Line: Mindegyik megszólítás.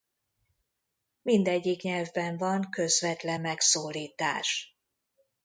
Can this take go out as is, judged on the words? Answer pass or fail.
fail